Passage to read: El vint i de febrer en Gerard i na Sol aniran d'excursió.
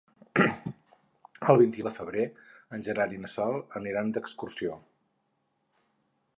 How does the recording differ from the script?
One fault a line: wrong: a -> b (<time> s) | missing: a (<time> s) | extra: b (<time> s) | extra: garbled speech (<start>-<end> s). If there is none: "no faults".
no faults